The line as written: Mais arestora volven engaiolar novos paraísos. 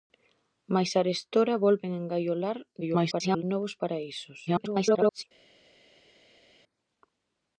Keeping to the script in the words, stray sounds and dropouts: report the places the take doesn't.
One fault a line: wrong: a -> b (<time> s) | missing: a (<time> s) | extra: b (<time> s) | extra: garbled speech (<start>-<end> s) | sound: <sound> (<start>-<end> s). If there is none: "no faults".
extra: garbled speech (2.8-3.4 s)
extra: garbled speech (4.5-5.2 s)